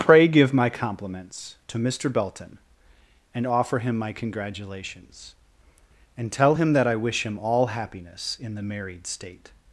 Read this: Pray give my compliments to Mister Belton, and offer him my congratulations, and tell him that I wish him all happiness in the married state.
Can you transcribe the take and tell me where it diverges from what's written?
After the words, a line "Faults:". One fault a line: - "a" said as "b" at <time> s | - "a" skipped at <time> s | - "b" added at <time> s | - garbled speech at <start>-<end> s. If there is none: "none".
Pray give my compliments to Mister Belton, and offer him my congratulations, and tell him that I wish him all happiness in the married state.
Faults:
none